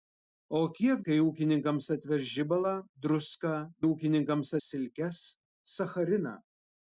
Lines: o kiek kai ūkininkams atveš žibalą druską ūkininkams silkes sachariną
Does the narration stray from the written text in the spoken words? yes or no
no